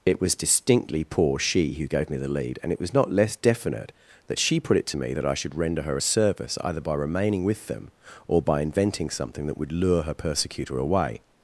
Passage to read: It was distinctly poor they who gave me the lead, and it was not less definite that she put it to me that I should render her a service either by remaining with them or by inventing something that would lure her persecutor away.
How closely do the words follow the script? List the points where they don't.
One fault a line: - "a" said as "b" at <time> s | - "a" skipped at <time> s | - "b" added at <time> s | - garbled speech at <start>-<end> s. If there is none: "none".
- "they" said as "she" at 1.4 s